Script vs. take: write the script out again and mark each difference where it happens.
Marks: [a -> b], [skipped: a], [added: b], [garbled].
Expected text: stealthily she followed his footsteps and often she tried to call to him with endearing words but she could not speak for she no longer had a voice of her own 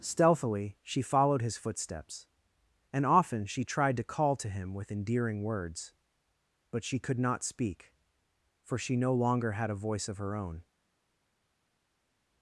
stealthily she followed his footsteps and often she tried to call to him with endearing words but she could not speak for she no longer had a voice of her own